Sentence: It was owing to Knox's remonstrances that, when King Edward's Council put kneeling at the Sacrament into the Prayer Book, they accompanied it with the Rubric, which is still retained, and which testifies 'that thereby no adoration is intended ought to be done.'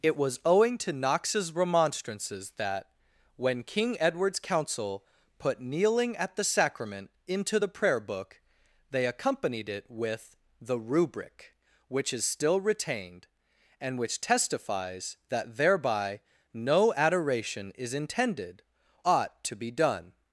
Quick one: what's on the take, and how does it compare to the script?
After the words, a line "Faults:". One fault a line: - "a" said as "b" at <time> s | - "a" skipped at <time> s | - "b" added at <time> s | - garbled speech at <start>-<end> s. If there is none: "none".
It was owing to Knox's remonstrances that, when King Edward's Council put kneeling at the Sacrament into the Prayer Book, they accompanied it with the Rubric, which is still retained, and which testifies 'that thereby no adoration is intended ought to be done.'
Faults:
none